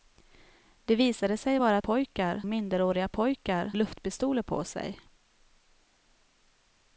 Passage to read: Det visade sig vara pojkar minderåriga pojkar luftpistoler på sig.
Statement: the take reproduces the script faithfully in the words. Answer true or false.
true